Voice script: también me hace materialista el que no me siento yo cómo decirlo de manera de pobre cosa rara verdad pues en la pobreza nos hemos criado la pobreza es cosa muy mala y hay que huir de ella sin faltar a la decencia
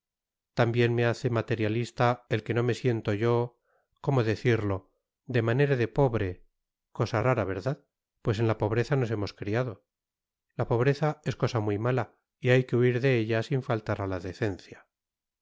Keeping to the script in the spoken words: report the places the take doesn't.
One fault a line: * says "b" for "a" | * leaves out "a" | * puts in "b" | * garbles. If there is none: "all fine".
all fine